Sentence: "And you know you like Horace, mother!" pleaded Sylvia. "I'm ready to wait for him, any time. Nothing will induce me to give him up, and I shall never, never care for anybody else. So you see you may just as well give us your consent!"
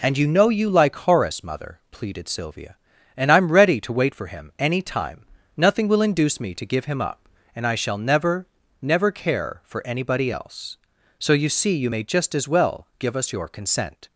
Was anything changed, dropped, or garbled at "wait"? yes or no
no